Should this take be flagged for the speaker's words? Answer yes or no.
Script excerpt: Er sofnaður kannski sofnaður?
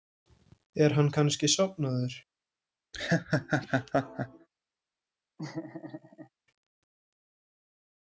yes